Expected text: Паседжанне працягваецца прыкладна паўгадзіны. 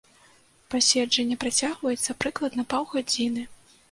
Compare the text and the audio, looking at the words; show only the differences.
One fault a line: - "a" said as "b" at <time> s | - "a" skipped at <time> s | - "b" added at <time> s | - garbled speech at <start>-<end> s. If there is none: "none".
none